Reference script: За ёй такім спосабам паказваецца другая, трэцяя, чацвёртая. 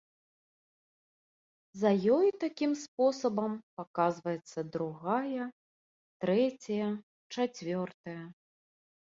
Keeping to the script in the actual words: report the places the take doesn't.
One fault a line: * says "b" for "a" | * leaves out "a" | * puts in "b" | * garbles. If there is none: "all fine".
all fine